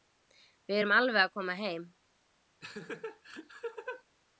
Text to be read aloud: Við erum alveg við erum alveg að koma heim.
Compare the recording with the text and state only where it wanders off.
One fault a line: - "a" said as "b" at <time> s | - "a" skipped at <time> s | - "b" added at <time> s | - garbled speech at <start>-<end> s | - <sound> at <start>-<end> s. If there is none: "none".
- "við erum alveg" skipped at 1.2 s
- laugh at 2.6-4.0 s